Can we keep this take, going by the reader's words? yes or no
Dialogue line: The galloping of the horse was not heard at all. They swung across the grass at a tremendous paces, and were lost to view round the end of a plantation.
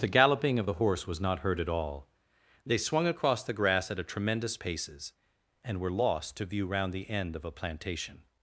yes